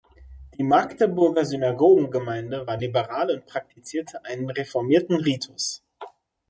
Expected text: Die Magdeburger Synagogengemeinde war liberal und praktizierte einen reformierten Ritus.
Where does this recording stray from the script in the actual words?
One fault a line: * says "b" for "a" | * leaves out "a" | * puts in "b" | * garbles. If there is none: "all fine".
all fine